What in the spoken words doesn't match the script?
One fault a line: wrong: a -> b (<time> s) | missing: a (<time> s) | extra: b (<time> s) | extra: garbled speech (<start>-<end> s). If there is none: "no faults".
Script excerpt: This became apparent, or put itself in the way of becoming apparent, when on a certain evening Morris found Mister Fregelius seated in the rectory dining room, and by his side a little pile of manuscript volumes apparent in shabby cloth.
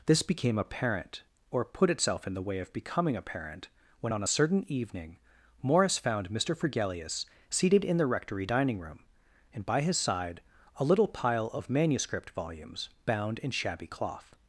wrong: apparent -> bound (13.0 s)